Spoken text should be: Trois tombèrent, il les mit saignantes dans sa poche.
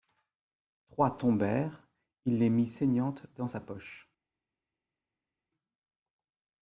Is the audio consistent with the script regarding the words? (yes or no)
yes